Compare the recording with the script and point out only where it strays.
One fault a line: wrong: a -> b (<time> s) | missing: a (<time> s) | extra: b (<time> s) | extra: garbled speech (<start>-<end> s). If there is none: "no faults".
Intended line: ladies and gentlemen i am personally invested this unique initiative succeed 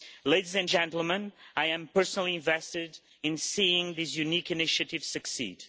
extra: in seeing (3.2 s)